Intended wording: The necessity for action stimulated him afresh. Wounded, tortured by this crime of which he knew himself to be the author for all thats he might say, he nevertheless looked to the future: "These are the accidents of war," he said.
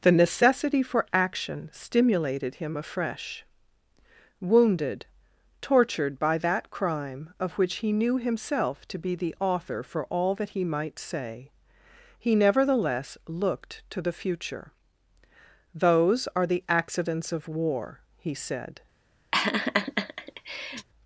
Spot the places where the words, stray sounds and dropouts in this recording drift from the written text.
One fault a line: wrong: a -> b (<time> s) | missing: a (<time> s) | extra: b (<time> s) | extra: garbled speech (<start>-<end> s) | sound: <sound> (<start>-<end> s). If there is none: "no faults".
wrong: this -> that (6.4 s)
wrong: thats -> that (10.4 s)
wrong: These -> Those (15.7 s)
sound: laugh (19.3-20.9 s)